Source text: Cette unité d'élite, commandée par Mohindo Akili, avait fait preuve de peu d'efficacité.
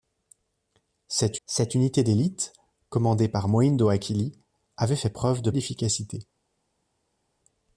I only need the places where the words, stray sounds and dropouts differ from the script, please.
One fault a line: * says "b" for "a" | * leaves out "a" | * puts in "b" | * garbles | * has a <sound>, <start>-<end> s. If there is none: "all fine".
* puts in "cette"
* leaves out "peu"